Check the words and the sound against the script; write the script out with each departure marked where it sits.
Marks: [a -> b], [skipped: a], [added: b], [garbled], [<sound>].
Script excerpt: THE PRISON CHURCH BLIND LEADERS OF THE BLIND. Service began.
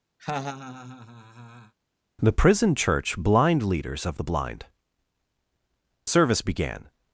[laugh] THE PRISON CHURCH BLIND LEADERS OF THE BLIND. Service began.